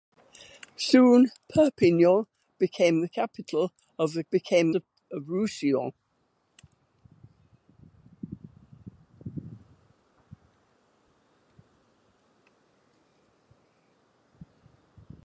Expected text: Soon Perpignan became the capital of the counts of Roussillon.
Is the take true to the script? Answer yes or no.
no